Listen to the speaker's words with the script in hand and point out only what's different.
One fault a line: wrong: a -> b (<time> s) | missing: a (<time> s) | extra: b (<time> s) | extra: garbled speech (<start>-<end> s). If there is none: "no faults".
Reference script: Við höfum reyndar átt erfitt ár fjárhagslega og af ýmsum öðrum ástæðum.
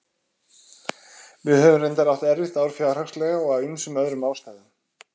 no faults